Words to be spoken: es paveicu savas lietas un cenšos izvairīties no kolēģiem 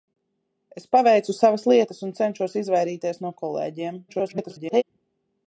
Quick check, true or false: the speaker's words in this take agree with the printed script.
false